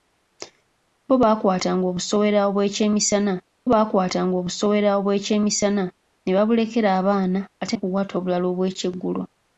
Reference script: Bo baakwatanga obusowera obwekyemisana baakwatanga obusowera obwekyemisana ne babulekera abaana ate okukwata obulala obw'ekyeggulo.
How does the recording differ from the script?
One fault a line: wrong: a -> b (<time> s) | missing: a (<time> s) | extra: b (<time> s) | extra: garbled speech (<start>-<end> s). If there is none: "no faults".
no faults